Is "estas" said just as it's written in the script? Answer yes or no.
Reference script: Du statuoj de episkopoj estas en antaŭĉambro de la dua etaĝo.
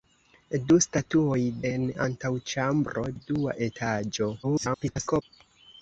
no